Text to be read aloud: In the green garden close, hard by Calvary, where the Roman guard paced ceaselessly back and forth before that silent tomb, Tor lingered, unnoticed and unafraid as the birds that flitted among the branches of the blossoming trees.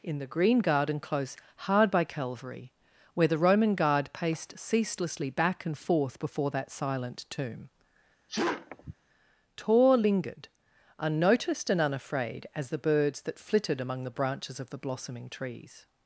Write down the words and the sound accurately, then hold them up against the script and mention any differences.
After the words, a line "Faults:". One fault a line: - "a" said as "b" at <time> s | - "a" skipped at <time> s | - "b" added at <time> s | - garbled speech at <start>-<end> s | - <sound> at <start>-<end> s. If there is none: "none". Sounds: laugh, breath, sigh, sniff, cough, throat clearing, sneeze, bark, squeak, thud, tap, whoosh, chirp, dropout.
In the green garden close, hard by Calvary, where the Roman guard paced ceaselessly back and forth before that silent tomb, Tor lingered, unnoticed and unafraid as the birds that flitted among the branches of the blossoming trees.
Faults:
- sneeze at 8.3-8.9 s